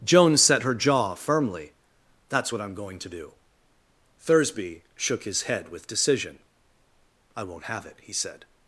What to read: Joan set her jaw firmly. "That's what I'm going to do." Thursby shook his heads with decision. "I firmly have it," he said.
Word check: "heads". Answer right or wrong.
wrong